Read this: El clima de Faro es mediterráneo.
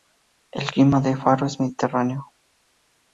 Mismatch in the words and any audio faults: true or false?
false